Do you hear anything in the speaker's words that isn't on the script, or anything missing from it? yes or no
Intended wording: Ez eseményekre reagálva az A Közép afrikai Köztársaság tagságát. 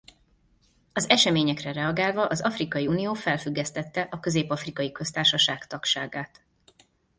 yes